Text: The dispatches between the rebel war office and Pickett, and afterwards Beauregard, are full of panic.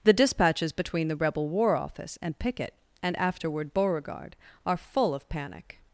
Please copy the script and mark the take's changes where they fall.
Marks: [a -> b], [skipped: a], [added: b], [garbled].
The dispatches between the rebel war office and Pickett, and [afterwards -> afterward] Beauregard, are full of panic.